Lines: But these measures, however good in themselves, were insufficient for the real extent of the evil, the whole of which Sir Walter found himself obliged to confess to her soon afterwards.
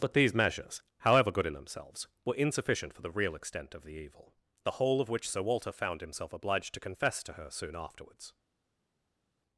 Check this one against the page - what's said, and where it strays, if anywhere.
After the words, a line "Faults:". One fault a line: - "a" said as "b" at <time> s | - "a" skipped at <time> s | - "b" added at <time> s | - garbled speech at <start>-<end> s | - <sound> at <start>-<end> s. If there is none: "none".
But these measures, however good in themselves, were insufficient for the real extent of the evil, the whole of which Sir Walter found himself obliged to confess to her soon afterwards.
Faults:
none